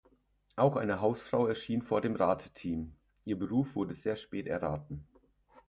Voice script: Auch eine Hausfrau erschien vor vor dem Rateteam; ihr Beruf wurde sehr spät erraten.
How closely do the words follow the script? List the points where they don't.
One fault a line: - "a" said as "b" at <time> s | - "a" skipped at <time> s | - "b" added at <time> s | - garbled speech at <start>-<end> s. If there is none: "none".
- "vor" skipped at 2.0 s